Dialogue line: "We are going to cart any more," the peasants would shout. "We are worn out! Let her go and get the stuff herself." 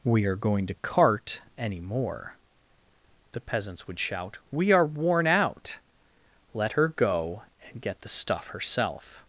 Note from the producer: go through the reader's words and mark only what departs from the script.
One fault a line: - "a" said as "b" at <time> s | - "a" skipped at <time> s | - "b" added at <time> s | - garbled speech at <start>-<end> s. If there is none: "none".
none